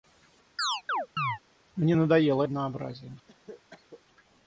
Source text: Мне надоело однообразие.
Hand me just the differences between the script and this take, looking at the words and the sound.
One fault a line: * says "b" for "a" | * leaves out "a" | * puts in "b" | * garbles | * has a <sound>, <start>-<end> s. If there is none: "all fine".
* has a chirp, 0.6-1.4 s
* has a cough, 3.3-4.0 s